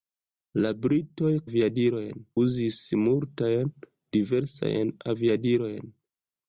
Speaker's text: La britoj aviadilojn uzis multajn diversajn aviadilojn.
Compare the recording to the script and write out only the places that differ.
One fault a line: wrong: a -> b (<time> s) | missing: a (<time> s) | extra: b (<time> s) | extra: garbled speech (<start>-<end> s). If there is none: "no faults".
no faults